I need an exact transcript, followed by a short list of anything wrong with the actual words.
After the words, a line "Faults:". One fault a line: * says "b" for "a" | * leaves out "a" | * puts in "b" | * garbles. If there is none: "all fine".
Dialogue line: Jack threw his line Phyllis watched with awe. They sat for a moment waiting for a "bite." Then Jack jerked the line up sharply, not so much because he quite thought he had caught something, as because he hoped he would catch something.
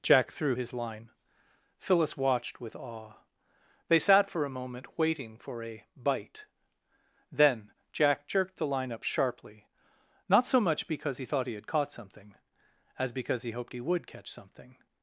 Jack threw his line Phyllis watched with awe. They sat for a moment waiting for a "bite." Then Jack jerked the line up sharply, not so much because he thought he had caught something, as because he hoped he would catch something.
Faults:
* leaves out "quite"